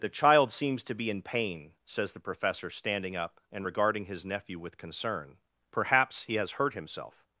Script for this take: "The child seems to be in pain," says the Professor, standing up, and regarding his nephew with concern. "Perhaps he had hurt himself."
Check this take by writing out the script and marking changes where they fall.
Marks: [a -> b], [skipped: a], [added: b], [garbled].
"The child seems to be in pain," says the Professor, standing up, and regarding his nephew with concern. "Perhaps he [had -> has] hurt himself."